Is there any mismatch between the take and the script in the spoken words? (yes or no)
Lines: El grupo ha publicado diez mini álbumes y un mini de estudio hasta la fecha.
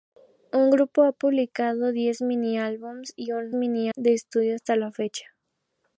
no